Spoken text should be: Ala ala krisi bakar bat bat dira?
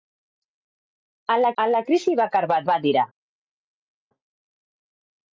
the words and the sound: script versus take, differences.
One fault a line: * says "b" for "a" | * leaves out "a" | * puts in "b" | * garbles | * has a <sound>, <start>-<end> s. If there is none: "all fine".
all fine